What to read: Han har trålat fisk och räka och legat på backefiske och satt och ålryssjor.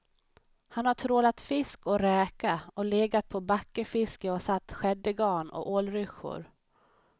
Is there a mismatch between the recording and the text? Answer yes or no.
yes